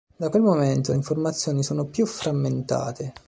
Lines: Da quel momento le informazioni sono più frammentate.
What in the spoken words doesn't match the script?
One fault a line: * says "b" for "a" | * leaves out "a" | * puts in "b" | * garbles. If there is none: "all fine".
all fine